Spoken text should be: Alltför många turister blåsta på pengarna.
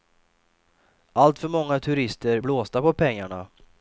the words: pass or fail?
pass